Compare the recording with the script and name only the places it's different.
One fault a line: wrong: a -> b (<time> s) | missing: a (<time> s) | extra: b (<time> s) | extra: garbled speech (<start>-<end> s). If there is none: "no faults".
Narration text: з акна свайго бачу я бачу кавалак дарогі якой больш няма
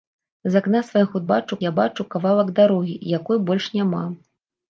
no faults